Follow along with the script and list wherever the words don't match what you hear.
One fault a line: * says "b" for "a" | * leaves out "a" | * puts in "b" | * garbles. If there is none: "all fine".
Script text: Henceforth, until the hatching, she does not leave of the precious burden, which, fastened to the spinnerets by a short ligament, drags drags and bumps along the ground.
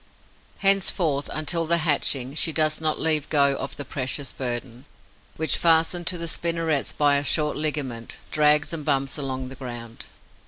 * puts in "go"
* leaves out "drags"